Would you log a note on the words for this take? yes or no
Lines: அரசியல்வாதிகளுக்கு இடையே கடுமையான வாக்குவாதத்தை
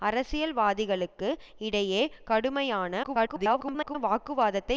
yes